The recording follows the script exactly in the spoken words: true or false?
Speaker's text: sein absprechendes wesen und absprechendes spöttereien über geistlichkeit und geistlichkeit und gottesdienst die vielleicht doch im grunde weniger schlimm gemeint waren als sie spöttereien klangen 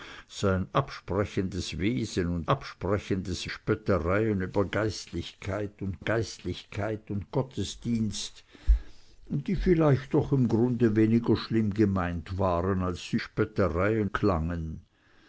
true